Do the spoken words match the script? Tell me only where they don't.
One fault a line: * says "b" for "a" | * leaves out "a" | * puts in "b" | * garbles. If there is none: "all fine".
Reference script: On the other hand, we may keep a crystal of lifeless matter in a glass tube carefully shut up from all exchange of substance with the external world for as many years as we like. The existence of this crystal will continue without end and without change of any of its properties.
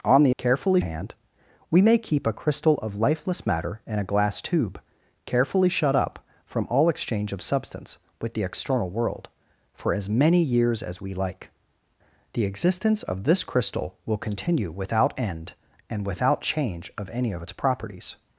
* says "carefully" for "other"